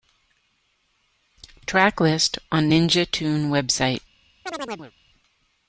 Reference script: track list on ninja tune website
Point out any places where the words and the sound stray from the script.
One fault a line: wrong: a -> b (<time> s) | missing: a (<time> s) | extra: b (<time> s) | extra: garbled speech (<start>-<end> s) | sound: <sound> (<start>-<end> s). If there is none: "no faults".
sound: chirp (4.5-4.9 s)